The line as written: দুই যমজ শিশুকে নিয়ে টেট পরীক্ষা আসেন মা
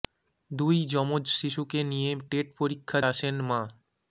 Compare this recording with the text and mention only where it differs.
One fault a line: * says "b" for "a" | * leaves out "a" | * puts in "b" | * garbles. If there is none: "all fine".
all fine